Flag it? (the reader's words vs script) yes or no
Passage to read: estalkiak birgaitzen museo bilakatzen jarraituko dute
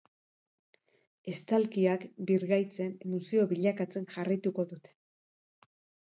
no